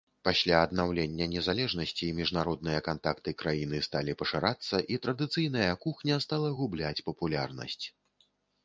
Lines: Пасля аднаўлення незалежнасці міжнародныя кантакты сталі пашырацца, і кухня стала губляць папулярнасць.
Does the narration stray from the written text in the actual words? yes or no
yes